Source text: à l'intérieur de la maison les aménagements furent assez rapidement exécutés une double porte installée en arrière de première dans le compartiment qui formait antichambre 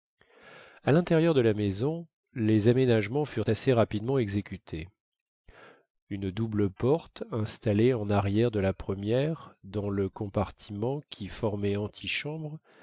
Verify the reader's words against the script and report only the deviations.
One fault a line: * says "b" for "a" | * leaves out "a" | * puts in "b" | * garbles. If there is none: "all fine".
* puts in "la"